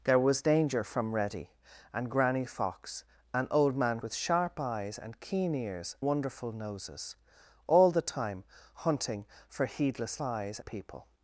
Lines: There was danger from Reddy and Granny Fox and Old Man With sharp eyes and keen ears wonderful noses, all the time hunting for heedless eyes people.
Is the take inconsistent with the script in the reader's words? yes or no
no